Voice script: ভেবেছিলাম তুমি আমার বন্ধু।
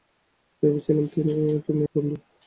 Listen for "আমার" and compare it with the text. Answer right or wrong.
wrong